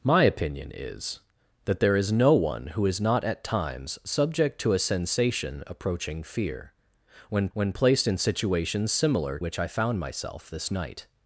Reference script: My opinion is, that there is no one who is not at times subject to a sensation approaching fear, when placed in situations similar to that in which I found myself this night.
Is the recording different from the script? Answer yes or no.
yes